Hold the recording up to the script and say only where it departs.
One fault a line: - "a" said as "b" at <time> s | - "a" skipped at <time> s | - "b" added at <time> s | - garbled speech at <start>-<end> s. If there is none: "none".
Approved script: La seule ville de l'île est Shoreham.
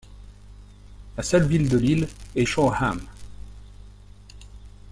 none